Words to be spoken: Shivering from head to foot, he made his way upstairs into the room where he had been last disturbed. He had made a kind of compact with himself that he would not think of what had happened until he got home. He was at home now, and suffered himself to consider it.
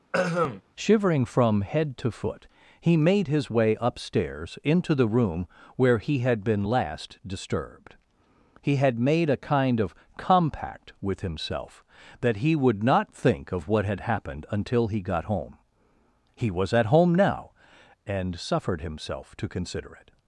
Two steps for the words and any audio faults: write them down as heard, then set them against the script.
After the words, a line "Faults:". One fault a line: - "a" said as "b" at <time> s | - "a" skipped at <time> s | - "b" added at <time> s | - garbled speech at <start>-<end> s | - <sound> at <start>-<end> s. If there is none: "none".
Shivering from head to foot, he made his way upstairs into the room where he had been last disturbed. He had made a kind of compact with himself that he would not think of what had happened until he got home. He was at home now, and suffered himself to consider it.
Faults:
- throat clearing at 0.1-0.6 s